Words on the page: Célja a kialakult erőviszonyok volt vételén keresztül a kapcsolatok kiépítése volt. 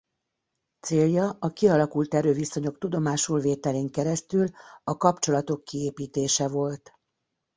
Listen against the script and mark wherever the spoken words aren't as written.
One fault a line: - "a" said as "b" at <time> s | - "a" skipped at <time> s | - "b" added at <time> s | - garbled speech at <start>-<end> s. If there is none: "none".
- "volt" said as "tudomásul" at 2.8 s